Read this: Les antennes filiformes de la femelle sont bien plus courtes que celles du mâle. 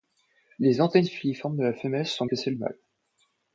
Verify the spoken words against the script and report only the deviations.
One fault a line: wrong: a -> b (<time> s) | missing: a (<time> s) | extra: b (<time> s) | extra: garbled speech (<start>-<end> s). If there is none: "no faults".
missing: bien plus courtes (2.2 s)
missing: du (2.5 s)